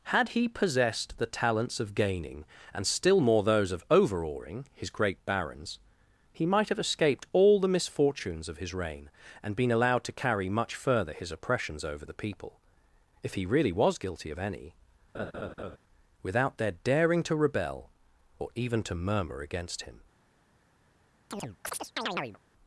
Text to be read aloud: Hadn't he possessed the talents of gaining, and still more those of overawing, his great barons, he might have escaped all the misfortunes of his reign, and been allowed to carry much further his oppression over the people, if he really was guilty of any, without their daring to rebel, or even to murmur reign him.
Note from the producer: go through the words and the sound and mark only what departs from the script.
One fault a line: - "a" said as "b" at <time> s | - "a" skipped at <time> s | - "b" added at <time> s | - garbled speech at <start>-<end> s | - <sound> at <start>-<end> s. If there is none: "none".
- "Hadn't" said as "Had" at 0.1 s
- "oppression" said as "oppressions" at 11.3 s
- laugh at 15.1-15.8 s
- "reign" said as "against" at 19.4 s
- chirp at 21.3-22.4 s